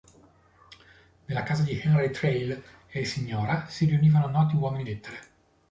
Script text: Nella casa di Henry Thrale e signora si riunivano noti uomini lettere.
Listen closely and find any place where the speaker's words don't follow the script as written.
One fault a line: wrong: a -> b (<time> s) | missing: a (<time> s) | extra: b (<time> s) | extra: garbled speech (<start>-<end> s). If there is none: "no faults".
no faults